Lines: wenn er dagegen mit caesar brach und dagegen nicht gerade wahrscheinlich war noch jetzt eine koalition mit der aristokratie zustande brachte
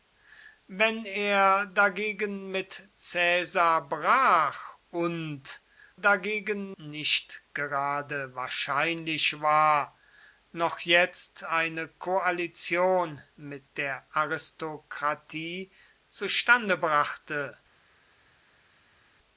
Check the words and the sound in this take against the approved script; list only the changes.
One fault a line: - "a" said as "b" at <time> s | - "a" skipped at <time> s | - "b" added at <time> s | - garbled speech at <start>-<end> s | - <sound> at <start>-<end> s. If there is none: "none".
none